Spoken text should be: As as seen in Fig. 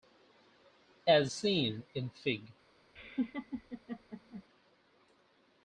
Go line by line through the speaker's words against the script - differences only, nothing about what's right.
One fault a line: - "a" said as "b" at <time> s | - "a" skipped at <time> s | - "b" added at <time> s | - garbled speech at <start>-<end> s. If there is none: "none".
- "as" skipped at 1.3 s